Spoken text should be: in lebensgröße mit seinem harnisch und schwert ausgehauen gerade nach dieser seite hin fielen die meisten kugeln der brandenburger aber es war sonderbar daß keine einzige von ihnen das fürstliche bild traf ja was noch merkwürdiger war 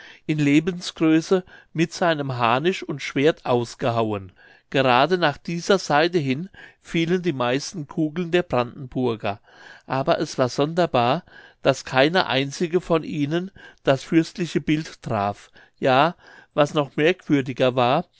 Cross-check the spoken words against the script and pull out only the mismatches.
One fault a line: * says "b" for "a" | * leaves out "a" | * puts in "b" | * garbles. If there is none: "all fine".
all fine